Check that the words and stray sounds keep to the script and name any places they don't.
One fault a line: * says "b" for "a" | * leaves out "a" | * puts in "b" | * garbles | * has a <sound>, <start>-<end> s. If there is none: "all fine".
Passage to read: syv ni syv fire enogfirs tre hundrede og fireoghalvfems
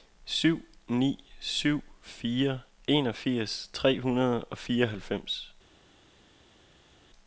all fine